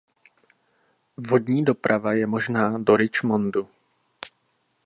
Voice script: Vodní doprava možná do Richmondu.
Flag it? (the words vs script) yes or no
yes